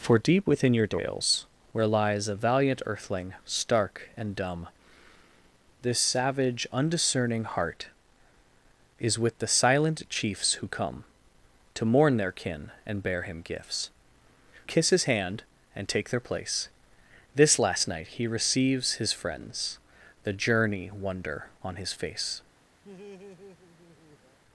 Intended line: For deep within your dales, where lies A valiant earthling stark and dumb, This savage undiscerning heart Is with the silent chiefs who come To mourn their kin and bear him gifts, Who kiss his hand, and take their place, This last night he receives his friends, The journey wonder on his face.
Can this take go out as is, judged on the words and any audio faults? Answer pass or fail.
fail